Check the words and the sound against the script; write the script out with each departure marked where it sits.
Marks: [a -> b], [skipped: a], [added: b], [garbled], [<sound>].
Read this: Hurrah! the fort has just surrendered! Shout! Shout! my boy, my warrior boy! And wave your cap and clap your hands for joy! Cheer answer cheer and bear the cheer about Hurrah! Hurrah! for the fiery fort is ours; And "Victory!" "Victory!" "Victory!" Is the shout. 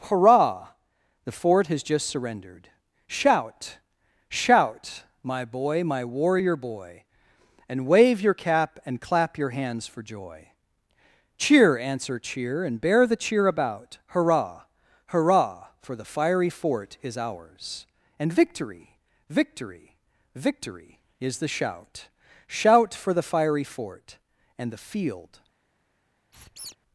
Hurrah! the fort has just surrendered! Shout! Shout! my boy, my warrior boy! And wave your cap and clap your hands for joy! Cheer answer cheer and bear the cheer about Hurrah! Hurrah! for the fiery fort is ours; And "Victory!" "Victory!" "Victory!" Is the shout. [added: Shout for the fiery fort and the field] [squeak]